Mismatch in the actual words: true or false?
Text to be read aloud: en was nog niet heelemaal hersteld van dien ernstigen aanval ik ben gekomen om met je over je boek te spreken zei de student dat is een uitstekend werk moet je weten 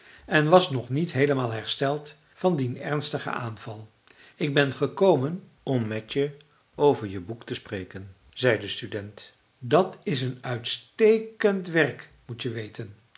false